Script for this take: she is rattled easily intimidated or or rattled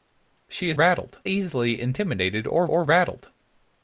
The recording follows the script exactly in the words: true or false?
true